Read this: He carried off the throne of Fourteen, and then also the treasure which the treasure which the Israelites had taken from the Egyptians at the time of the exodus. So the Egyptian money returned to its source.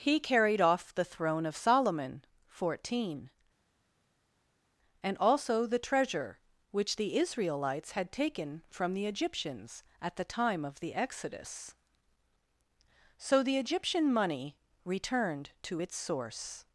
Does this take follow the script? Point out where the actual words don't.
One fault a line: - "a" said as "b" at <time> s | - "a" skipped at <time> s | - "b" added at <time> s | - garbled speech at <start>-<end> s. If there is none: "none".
- "Solomon" added at 1.6 s
- "then" skipped at 5.1 s
- "treasure which the" skipped at 7.2 s